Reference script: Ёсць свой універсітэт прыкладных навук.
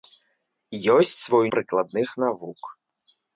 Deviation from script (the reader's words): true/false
true